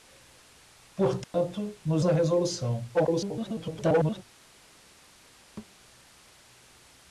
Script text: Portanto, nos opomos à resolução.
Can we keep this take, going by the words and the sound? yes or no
no